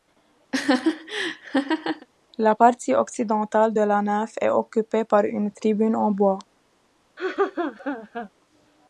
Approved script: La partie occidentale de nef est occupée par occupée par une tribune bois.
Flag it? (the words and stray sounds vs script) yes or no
yes